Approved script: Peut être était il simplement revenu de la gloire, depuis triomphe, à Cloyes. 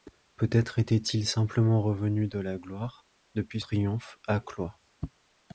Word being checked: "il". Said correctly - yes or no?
yes